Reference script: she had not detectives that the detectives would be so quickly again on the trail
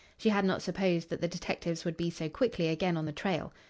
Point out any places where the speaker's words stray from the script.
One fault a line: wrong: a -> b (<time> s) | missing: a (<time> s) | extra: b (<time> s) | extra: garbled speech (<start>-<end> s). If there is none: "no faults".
wrong: detectives -> supposed (0.6 s)